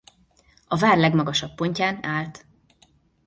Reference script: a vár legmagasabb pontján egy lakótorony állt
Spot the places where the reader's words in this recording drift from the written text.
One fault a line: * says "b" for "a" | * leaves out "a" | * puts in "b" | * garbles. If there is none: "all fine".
* leaves out "egy lakótorony"